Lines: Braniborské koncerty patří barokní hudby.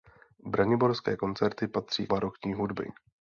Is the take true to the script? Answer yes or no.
yes